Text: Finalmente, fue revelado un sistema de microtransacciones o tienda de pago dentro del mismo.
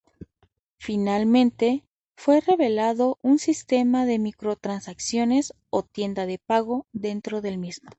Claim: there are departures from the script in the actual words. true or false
false